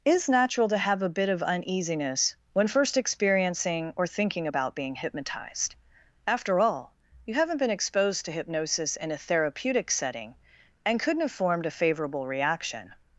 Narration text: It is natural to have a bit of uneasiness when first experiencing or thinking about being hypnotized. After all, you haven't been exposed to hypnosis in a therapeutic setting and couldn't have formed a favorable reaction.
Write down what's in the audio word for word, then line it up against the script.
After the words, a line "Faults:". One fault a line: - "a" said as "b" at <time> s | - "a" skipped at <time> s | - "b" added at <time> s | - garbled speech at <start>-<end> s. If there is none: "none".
is natural to have a bit of uneasiness when first experiencing or thinking about being hypnotized. After all, you haven't been exposed to hypnosis in a therapeutic setting and couldn't have formed a favorable reaction.
Faults:
- "It" skipped at 0.0 s